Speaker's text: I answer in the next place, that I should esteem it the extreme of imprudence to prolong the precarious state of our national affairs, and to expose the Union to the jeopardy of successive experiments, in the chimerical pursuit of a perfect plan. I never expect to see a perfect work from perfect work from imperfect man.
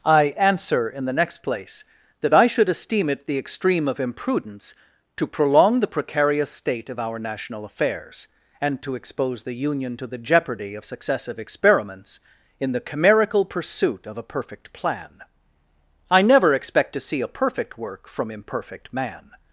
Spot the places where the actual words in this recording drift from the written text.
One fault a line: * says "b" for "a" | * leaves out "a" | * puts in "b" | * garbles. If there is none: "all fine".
* leaves out "perfect work from"